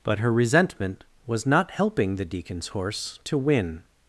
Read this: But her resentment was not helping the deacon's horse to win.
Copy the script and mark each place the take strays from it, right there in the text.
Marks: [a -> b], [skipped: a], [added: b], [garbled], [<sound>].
But her resentment was not helping the deacon's horse to win.